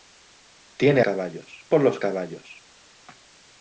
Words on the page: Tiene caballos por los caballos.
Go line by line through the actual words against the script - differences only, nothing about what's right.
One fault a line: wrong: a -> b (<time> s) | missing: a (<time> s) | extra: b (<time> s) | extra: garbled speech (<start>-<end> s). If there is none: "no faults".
no faults